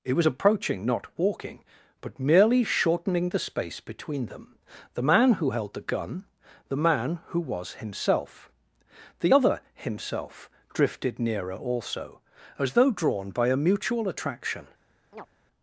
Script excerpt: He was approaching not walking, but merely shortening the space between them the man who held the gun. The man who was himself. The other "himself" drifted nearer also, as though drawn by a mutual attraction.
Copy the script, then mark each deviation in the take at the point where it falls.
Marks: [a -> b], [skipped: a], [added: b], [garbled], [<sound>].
[He -> It] was approaching not walking, but merely shortening the space between them the man who held the gun. The man who was himself. The other "himself" drifted nearer also, as though drawn by a mutual attraction. [chirp]